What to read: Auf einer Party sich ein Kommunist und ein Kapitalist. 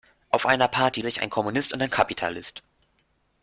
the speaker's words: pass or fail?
pass